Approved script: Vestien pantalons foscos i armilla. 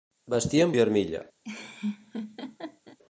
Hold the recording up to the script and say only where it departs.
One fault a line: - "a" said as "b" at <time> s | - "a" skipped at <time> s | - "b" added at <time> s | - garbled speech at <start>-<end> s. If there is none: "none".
- "pantalons foscos" skipped at 0.7 s